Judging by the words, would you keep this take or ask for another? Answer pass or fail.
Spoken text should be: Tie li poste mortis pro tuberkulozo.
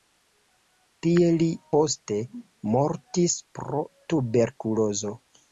pass